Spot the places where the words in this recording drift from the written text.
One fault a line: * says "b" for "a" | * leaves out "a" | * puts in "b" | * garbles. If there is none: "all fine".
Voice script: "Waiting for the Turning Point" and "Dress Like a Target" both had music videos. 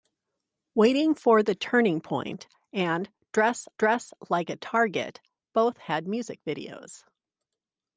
* puts in "dress"